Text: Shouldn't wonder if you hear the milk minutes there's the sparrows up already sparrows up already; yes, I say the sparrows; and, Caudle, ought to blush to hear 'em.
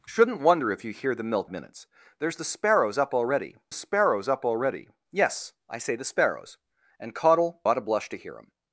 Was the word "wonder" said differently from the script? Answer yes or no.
no